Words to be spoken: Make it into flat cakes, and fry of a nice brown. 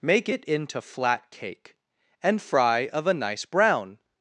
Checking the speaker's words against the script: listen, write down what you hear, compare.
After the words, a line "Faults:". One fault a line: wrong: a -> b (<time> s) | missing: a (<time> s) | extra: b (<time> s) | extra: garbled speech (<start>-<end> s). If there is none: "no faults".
Make it into flat cake, and fry of a nice brown.
Faults:
wrong: cakes -> cake (1.3 s)